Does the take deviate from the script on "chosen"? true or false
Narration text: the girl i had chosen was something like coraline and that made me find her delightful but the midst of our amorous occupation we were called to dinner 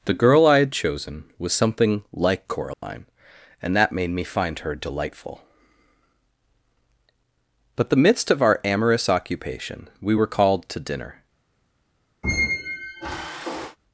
false